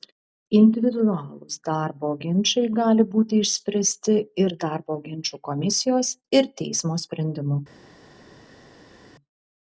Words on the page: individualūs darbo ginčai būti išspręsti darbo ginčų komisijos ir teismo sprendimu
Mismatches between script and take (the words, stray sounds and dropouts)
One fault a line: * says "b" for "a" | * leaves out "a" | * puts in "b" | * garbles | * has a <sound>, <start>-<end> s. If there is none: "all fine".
* puts in "gali"
* puts in "ir"